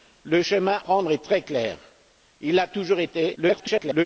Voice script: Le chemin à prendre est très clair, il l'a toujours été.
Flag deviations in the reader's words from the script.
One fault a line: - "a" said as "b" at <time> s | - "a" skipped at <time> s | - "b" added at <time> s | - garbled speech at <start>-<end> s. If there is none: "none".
- "à" skipped at 0.8 s
- garbled speech at 3.4-4.1 s